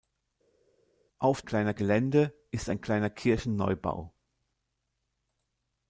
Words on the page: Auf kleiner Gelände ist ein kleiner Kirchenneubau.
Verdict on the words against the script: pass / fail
pass